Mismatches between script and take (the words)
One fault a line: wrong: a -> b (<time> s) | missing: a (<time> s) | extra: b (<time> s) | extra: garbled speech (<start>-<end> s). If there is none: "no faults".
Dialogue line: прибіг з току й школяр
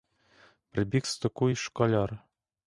no faults